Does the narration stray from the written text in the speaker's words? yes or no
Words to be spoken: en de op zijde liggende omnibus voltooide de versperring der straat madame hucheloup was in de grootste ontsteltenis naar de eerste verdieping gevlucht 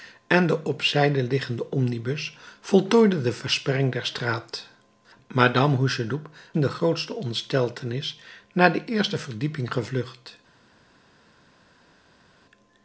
yes